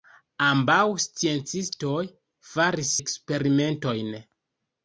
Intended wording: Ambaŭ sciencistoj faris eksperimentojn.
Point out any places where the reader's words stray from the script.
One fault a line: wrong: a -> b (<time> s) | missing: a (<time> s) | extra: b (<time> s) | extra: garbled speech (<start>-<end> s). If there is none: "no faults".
no faults